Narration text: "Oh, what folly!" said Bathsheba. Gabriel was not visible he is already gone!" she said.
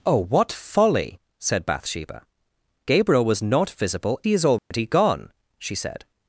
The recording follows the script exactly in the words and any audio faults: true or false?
false